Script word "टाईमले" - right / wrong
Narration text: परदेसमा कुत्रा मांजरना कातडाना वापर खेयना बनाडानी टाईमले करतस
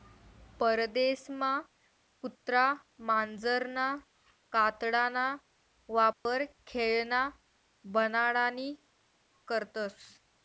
wrong